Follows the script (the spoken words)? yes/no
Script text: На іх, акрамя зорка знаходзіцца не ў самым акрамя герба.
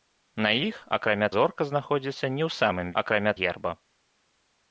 yes